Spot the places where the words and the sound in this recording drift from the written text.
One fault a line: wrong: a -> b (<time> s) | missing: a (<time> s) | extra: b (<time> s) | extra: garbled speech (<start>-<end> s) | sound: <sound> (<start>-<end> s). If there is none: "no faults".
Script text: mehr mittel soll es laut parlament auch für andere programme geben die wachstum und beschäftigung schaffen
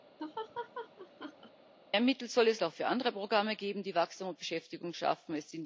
sound: laugh (0.2-1.5 s)
missing: laut parlament (2.6 s)